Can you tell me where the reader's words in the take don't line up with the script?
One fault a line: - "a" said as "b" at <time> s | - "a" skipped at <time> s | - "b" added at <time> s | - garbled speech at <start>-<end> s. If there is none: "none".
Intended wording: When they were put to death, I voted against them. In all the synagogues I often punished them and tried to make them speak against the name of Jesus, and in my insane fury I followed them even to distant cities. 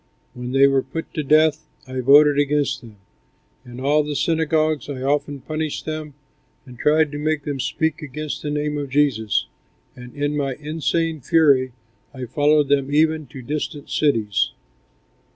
none